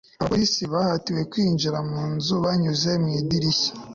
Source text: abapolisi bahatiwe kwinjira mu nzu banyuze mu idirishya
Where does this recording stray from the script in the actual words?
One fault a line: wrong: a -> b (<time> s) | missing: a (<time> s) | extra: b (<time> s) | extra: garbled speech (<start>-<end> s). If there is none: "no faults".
no faults